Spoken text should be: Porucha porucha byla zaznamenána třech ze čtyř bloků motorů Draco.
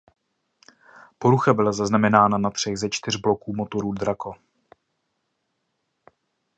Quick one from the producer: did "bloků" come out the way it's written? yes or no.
yes